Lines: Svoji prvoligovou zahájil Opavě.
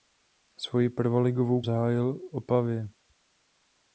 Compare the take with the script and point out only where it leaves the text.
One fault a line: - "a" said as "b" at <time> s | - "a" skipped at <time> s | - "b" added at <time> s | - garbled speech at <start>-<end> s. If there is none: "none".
none